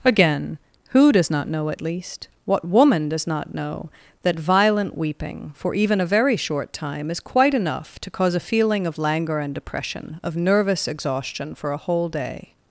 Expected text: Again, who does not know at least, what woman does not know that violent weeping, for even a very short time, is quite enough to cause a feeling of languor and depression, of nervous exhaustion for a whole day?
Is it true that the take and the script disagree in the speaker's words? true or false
false